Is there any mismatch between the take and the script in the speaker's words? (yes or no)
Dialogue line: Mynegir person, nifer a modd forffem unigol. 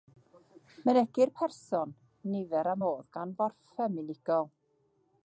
yes